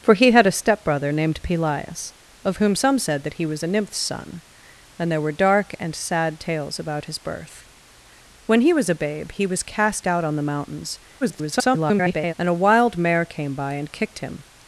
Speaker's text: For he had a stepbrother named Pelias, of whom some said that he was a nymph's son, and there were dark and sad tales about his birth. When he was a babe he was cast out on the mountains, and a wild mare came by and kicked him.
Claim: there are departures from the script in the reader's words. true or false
true